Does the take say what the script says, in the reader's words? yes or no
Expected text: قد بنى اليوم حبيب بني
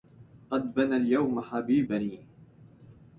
yes